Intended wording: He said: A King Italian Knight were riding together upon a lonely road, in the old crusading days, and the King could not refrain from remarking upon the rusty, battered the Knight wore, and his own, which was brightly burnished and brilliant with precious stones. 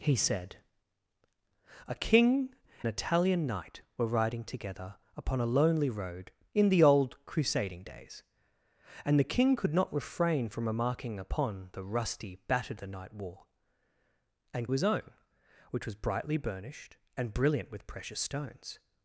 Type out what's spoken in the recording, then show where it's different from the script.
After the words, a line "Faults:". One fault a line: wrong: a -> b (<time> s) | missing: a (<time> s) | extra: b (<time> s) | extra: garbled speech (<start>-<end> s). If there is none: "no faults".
He said: A King Italian Knight were riding together upon a lonely road, in the old crusading days, and the King could not refrain from remarking upon the rusty, battered the Knight wore, and his own, which was brightly burnished and brilliant with precious stones.
Faults:
no faults